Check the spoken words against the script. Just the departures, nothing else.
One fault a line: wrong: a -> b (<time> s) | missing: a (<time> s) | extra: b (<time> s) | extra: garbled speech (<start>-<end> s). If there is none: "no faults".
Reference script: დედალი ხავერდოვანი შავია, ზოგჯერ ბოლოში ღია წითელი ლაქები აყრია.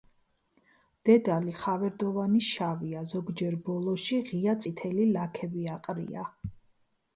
no faults